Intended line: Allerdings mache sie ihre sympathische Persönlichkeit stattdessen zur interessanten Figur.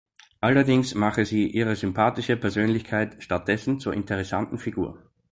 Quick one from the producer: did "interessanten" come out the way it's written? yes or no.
yes